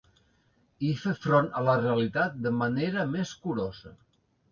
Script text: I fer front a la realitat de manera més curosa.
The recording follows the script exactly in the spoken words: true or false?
true